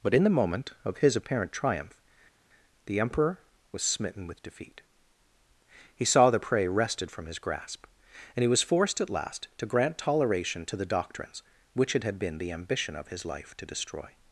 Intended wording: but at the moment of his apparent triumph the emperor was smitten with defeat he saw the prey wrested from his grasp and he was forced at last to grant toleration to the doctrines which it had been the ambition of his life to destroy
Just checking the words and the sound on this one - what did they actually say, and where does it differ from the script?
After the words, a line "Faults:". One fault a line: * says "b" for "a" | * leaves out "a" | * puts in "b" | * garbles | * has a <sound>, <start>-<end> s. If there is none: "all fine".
but in the moment of his apparent triumph the emperor was smitten with defeat he saw the prey wrested from his grasp and he was forced at last to grant toleration to the doctrines which it had been the ambition of his life to destroy
Faults:
* says "in" for "at"